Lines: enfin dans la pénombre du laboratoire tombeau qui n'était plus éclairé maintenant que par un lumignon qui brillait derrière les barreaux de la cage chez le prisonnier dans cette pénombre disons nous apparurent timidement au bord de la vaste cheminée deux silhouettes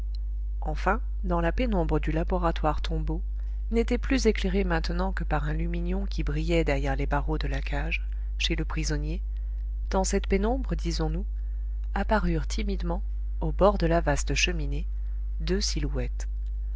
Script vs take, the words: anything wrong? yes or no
yes